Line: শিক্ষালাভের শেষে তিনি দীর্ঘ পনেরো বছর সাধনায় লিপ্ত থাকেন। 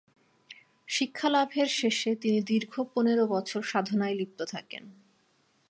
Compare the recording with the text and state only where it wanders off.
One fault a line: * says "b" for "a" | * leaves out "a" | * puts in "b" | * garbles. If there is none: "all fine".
all fine